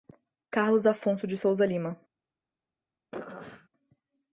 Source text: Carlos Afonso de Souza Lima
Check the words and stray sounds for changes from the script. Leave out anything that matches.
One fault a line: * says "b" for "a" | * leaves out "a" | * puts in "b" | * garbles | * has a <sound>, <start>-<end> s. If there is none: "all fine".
* has a throat clearing, 3.1-3.7 s